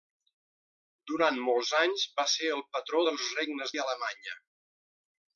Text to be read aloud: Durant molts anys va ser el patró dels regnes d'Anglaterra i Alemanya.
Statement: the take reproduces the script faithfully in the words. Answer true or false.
false